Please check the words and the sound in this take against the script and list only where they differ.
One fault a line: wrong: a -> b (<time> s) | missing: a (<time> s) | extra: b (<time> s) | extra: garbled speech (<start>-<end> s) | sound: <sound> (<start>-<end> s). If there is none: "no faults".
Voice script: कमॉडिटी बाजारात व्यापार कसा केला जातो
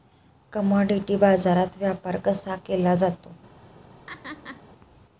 sound: laugh (4.1-4.6 s)